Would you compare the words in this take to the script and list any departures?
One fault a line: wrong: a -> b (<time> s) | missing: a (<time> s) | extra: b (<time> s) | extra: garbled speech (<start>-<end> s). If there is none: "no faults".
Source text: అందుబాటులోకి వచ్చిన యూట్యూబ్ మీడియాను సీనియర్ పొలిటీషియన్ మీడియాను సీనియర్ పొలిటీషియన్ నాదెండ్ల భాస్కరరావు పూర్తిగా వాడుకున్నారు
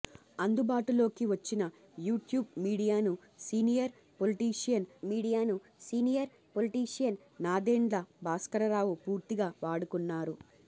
no faults